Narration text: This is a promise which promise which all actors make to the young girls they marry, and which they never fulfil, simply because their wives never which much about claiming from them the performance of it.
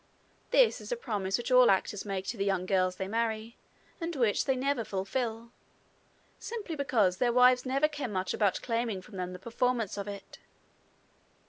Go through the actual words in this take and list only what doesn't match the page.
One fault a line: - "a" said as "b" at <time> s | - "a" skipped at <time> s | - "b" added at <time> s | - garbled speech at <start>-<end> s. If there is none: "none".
- "promise which" skipped at 1.5 s
- "which" said as "care" at 7.9 s